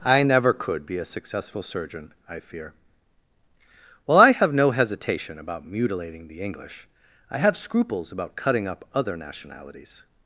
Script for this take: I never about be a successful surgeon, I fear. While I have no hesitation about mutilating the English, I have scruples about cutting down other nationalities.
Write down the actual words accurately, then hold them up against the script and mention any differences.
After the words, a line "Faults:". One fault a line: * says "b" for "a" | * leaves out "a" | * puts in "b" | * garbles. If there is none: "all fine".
I never could be a successful surgeon, I fear. While I have no hesitation about mutilating the English, I have scruples about cutting up other nationalities.
Faults:
* says "could" for "about"
* says "up" for "down"